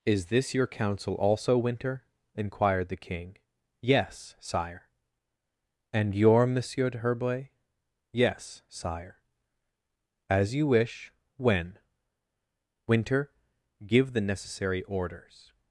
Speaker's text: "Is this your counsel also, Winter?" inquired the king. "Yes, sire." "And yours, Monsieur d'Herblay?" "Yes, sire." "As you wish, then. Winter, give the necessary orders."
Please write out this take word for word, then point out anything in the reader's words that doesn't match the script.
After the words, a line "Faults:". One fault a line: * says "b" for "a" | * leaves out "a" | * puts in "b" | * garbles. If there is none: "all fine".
"Is this your counsel also, Winter?" inquired the king. "Yes, sire." "And your, Monsieur d'Herblay?" "Yes, sire." "As you wish, when. Winter, give the necessary orders."
Faults:
* says "your" for "yours"
* says "when" for "then"